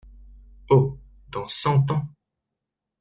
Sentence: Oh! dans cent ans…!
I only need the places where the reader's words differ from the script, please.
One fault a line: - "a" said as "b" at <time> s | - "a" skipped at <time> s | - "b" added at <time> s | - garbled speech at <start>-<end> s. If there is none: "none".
none